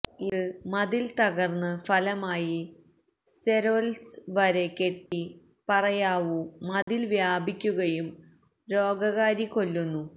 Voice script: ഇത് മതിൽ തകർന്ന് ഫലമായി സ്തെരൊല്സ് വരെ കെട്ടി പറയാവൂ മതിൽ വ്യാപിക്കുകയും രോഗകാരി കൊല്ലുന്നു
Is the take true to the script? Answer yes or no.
yes